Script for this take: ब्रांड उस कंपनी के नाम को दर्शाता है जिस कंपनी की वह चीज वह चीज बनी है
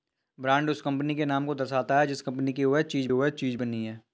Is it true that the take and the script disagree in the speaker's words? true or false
false